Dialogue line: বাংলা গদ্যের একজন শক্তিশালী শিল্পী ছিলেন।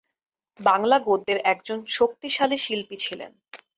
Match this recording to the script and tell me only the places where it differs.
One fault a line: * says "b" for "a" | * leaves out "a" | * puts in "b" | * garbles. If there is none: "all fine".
all fine